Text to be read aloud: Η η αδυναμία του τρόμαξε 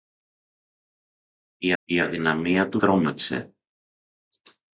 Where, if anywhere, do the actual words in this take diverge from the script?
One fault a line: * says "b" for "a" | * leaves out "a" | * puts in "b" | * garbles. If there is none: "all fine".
all fine